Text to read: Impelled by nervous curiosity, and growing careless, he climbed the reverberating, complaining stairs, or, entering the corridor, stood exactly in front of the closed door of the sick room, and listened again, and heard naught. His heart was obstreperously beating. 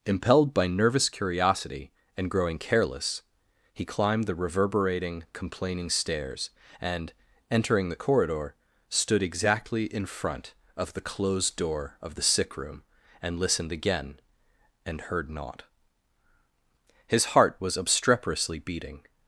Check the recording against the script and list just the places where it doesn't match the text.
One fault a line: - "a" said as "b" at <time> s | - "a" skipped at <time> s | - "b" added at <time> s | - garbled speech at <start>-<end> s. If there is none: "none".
- "or" said as "and" at 6.8 s